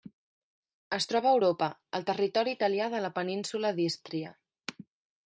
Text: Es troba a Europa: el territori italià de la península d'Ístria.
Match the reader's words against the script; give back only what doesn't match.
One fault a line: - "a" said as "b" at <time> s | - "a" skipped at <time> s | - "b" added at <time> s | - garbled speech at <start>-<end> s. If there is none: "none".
none